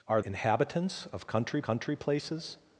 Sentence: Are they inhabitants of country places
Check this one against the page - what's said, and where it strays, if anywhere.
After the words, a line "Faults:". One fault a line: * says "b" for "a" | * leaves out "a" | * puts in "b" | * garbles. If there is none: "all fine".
Are inhabitants of country country places
Faults:
* leaves out "they"
* puts in "country"